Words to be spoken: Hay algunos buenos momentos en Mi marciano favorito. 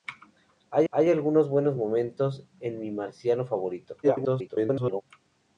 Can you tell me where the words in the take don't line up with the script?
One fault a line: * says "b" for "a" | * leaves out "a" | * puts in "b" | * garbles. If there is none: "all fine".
* puts in "hay"
* garbles